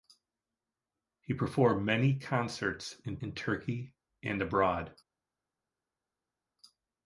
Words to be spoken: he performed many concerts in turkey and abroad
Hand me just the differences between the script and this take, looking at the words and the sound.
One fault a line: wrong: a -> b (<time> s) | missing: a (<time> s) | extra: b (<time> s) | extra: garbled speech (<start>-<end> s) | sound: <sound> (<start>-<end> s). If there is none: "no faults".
extra: in (3.2 s)